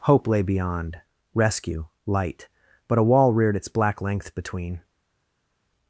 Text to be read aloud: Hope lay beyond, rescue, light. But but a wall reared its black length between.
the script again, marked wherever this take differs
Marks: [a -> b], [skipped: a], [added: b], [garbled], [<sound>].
Hope lay beyond, rescue, light. But [skipped: but] a wall reared its black length between.